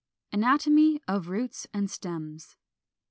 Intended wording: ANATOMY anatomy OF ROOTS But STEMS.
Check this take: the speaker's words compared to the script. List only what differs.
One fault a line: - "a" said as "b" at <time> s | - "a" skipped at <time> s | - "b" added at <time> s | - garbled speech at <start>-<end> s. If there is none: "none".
- "anatomy" skipped at 1.0 s
- "But" said as "AND" at 1.8 s